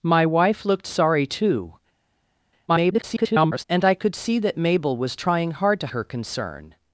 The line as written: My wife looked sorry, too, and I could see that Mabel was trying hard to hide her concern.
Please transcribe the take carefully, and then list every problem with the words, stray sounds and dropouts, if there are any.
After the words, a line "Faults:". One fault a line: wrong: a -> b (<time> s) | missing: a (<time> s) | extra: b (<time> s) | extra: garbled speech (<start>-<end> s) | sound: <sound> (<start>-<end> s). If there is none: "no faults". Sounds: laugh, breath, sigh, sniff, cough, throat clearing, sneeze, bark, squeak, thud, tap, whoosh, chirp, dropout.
My wife looked sorry, too, [garbled] and I could see that Mabel was trying hard to her concern.
Faults:
extra: garbled speech (2.7-3.6 s)
missing: hide (5.9 s)